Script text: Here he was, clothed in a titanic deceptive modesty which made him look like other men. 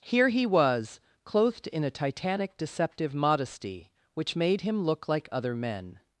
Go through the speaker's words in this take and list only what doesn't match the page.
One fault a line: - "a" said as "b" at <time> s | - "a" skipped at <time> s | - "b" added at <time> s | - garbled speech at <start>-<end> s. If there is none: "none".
none